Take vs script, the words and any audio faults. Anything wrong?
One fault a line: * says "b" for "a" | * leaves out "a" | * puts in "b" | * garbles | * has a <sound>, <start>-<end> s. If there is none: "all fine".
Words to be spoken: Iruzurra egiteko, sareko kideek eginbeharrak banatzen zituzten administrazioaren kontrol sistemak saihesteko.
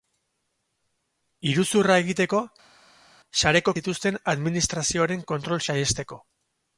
* leaves out "kideek eginbeharrak banatzen"
* leaves out "sistemak"